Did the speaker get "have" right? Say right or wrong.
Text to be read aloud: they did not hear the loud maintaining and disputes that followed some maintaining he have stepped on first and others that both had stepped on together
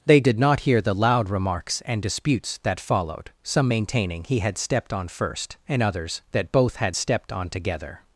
wrong